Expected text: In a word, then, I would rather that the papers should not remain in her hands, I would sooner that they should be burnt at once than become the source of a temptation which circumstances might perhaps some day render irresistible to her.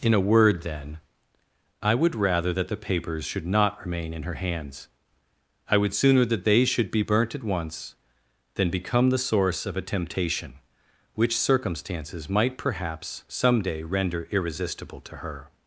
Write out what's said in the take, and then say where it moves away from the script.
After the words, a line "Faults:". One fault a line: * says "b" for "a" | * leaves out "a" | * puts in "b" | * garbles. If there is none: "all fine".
In a word, then, I would rather that the papers should not remain in her hands, I would sooner that they should be burnt at once than become the source of a temptation which circumstances might perhaps some day render irresistible to her.
Faults:
all fine